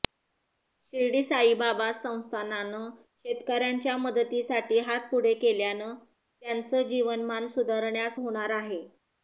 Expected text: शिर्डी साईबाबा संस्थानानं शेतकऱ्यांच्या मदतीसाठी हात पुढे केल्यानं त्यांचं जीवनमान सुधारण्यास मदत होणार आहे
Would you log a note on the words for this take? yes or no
yes